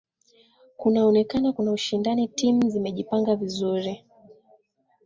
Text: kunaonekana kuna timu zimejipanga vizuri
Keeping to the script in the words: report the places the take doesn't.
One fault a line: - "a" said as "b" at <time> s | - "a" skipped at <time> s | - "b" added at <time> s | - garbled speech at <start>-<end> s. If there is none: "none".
- "ushindani" added at 1.7 s